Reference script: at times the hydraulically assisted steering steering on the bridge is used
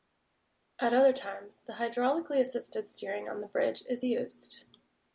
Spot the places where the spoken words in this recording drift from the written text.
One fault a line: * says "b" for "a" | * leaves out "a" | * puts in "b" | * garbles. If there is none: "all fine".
* puts in "other"
* leaves out "steering"